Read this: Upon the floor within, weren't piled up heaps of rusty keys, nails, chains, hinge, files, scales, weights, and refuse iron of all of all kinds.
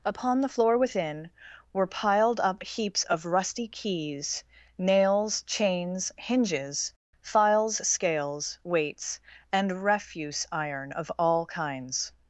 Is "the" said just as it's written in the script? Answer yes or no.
yes